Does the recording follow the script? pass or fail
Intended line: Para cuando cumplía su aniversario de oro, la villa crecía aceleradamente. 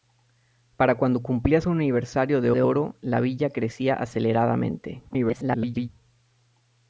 fail